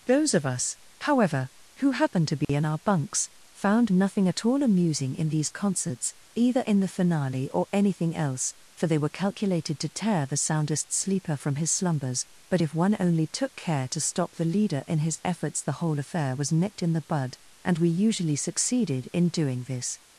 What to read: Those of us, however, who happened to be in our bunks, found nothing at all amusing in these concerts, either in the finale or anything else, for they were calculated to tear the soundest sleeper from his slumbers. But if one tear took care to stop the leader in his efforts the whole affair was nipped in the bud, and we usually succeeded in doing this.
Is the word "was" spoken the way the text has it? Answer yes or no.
yes